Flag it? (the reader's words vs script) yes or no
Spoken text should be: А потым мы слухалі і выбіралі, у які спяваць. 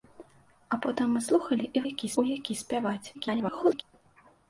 yes